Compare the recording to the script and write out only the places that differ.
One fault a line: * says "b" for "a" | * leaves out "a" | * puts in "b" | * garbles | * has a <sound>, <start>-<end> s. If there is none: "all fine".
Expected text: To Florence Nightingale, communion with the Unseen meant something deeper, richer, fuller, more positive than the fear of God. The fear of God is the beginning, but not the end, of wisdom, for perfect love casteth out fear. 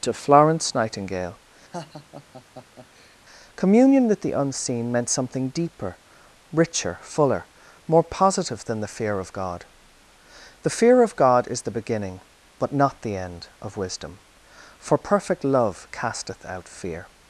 * has a laugh, 1.7-3.2 s